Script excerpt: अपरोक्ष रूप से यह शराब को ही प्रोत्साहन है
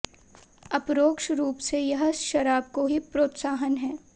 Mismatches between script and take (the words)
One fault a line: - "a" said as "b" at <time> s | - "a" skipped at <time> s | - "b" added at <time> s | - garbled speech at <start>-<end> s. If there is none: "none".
none